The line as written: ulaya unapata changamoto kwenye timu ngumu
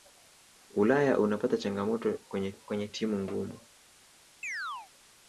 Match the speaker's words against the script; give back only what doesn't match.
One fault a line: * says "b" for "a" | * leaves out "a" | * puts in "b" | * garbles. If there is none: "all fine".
* puts in "kwenye"